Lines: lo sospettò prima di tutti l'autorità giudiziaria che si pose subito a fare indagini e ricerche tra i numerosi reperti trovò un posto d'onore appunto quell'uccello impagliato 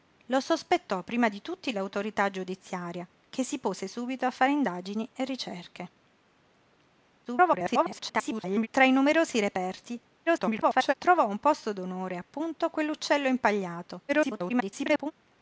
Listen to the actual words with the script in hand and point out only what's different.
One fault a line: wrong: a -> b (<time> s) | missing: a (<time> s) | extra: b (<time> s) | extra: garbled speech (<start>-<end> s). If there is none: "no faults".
extra: garbled speech (7.2-8.7 s)
extra: garbled speech (10.3-10.9 s)
extra: garbled speech (14.1-15.1 s)